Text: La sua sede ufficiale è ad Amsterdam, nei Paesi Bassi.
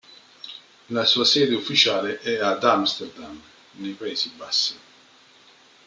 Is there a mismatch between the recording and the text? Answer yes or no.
no